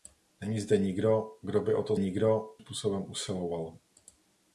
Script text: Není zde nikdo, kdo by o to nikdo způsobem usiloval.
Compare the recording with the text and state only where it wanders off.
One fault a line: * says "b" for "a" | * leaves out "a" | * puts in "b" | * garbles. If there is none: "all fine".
all fine